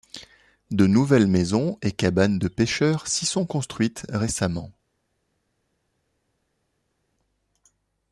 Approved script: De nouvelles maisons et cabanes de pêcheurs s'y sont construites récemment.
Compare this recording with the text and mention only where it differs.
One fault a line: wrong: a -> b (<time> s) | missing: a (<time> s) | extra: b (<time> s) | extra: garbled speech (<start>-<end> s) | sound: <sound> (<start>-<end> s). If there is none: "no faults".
no faults